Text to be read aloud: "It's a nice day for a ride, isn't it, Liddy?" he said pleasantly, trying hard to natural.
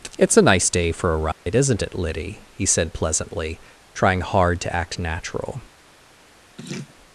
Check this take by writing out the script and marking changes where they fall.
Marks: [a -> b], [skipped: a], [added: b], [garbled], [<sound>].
"It's a nice day for a ride, [dropout] isn't it, Liddy?" he said pleasantly, trying hard to [added: act] natural. [laugh]